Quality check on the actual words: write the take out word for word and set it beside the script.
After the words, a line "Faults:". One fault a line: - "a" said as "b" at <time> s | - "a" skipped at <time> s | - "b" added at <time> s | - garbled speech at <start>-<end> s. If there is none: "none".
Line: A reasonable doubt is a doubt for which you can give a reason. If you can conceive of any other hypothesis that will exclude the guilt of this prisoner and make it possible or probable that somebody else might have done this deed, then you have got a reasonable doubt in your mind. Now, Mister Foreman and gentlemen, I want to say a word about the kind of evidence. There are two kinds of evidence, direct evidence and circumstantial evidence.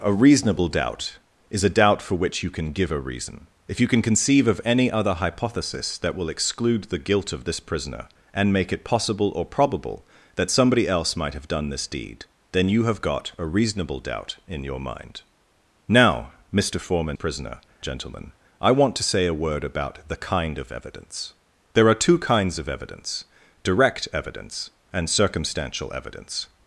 A reasonable doubt is a doubt for which you can give a reason. If you can conceive of any other hypothesis that will exclude the guilt of this prisoner and make it possible or probable that somebody else might have done this deed, then you have got a reasonable doubt in your mind. Now, Mister Foreman prisoner gentlemen, I want to say a word about the kind of evidence. There are two kinds of evidence, direct evidence and circumstantial evidence.
Faults:
- "and" said as "prisoner" at 17.1 s